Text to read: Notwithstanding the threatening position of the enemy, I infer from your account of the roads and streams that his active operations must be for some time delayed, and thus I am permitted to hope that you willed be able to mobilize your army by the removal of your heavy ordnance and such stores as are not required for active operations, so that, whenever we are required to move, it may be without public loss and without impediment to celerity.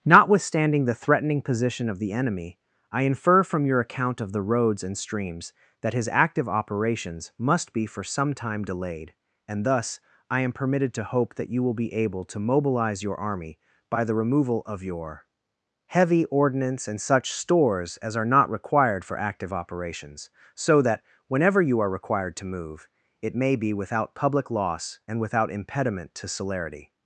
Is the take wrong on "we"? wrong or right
wrong